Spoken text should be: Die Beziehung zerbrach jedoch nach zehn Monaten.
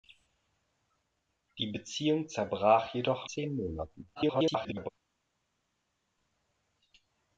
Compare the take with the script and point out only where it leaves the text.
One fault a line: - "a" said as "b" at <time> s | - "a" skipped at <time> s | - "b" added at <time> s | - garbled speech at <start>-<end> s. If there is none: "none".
- "nach" skipped at 3.3 s
- garbled speech at 4.1-4.9 s